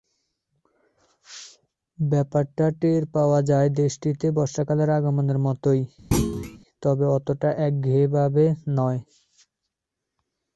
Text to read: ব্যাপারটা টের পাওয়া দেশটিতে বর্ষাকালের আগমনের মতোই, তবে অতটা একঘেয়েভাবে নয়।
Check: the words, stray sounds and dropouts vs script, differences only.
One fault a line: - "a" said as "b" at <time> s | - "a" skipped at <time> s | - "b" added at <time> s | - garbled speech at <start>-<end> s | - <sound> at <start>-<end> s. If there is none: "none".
- "যায়" added at 3.5 s
- thud at 6.1-6.6 s